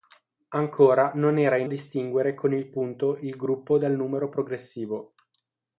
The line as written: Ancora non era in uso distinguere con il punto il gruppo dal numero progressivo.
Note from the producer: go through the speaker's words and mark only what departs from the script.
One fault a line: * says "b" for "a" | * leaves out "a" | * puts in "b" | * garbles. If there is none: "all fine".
* leaves out "uso"